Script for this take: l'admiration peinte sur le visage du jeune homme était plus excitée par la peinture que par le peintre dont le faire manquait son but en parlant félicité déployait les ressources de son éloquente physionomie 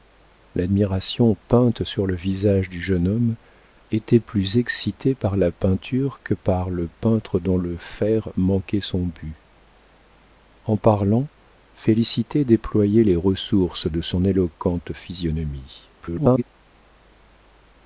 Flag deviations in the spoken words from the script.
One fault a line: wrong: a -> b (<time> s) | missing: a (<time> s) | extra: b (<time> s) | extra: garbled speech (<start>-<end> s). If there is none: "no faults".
extra: garbled speech (16.0-16.4 s)